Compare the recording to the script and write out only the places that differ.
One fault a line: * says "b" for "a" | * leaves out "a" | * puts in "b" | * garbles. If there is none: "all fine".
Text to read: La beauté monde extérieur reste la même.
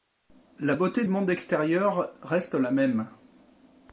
all fine